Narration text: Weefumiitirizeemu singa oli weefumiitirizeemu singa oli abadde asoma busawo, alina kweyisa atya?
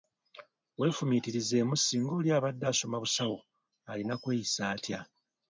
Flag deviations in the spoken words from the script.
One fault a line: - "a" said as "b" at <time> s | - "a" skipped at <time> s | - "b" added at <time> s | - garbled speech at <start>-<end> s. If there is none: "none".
- "weefumiitirizeemu singa oli" skipped at 2.3 s